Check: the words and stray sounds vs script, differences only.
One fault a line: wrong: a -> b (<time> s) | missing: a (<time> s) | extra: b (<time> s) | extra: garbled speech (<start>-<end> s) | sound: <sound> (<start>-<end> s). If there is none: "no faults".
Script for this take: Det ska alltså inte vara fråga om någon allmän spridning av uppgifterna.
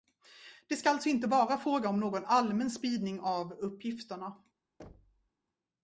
sound: thud (4.8-5.3 s)